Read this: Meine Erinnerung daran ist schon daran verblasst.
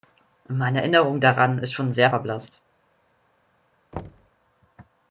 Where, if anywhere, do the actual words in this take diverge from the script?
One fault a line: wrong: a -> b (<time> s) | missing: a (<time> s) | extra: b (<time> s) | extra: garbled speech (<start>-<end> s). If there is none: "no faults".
wrong: daran -> sehr (1.9 s)